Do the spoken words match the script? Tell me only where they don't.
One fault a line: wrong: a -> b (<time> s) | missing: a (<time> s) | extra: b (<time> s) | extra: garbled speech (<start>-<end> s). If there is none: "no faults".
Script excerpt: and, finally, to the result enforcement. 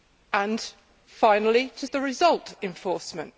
no faults